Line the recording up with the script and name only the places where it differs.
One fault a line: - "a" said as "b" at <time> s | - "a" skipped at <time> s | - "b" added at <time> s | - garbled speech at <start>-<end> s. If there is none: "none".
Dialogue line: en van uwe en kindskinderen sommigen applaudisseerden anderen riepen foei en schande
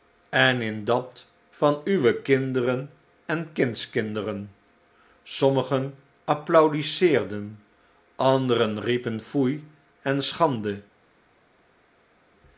- "in dat" added at 0.6 s
- "kinderen" added at 2.2 s